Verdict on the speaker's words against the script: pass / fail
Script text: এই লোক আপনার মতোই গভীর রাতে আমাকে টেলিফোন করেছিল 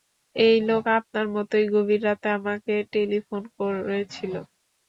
pass